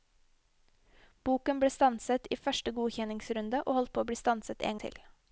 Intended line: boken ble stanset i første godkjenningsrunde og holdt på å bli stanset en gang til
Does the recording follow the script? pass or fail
fail